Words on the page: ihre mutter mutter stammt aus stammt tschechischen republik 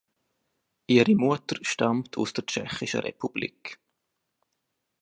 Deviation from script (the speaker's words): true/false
true